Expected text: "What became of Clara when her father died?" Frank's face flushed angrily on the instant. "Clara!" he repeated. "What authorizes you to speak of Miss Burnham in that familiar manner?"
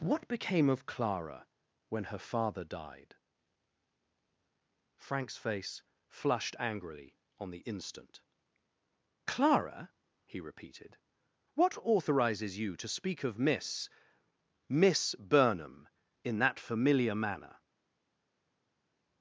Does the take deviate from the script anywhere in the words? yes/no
yes